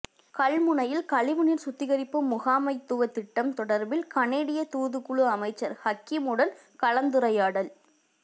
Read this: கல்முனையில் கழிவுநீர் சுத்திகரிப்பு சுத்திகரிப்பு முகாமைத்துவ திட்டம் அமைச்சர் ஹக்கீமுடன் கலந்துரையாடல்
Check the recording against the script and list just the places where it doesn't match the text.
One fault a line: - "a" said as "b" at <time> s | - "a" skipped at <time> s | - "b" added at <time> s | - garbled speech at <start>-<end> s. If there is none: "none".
- "சுத்திகரிப்பு" skipped at 2.2 s
- "தொடர்பில் கனேடிய தூதுக்குழு" added at 3.5 s